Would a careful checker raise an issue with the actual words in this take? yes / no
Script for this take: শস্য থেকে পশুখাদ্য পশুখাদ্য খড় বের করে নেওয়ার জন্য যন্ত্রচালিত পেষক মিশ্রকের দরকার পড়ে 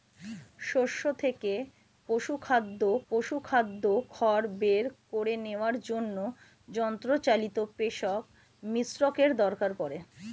no